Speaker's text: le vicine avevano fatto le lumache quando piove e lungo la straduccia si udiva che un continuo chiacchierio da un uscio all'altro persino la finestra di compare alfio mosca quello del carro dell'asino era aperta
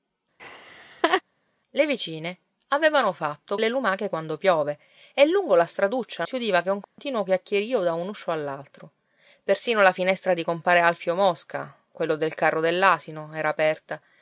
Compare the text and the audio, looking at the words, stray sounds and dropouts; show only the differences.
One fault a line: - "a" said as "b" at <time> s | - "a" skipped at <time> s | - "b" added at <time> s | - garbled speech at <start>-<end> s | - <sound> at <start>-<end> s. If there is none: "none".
- laugh at 0.4-1.2 s
- dropout at 6.8-7.0 s